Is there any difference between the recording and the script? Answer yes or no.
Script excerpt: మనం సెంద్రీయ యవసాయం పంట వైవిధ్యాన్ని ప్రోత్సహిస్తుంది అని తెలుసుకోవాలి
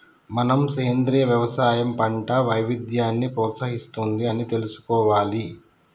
no